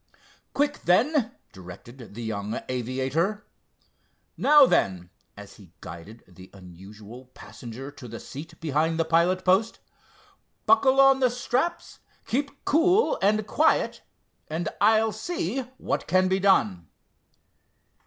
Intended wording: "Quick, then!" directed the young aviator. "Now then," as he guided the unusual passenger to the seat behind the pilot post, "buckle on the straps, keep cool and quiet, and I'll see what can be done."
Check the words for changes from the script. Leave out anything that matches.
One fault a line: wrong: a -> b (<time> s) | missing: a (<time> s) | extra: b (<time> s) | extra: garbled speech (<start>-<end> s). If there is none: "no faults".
no faults